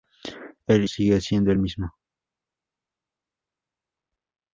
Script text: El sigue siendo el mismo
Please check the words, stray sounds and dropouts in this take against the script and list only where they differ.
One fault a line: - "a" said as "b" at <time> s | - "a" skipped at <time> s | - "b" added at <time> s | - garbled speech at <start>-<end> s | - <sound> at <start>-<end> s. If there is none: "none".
none